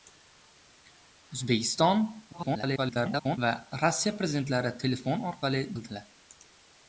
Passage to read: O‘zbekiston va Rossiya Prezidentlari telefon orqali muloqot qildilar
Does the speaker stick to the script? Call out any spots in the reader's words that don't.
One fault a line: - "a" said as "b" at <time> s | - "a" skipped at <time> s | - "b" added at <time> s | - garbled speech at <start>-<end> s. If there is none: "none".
- garbled speech at 2.3-3.4 s
- "muloqot" skipped at 5.6 s